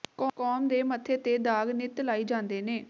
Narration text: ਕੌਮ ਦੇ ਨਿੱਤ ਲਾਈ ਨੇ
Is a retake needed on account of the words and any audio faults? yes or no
yes